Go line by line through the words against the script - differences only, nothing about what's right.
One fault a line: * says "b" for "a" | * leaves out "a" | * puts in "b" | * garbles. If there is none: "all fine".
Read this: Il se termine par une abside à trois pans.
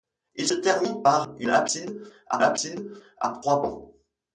* puts in "abside à"